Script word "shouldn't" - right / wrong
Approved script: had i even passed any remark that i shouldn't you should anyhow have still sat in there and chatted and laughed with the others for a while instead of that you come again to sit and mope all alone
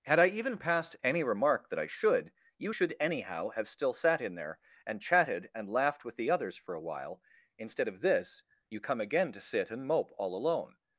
wrong